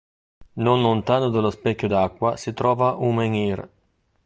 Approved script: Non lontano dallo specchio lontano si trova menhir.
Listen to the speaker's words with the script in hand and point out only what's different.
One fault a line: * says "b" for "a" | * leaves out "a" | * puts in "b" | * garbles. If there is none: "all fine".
* says "d'acqua" for "lontano"
* puts in "un"